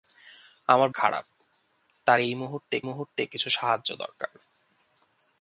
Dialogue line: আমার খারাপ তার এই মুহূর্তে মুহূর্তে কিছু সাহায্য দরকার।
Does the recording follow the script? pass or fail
pass